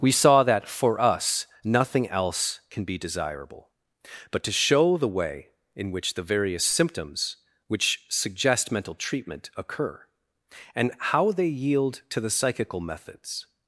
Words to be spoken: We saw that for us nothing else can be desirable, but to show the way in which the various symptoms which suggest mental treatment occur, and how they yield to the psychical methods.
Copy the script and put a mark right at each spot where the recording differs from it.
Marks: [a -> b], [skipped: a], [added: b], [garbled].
We saw that for us nothing else can be desirable, but to show the way in which the various symptoms which suggest mental treatment occur, and how they yield to the psychical methods.